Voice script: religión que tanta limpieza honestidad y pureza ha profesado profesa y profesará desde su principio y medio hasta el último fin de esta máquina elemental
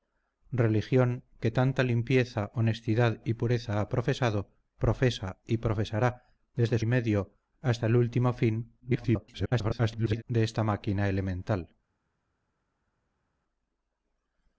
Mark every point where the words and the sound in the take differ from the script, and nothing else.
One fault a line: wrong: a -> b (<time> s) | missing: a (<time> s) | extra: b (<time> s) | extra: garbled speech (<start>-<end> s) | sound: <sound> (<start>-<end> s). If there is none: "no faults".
missing: su principio (6.8 s)
extra: garbled speech (8.8-10.2 s)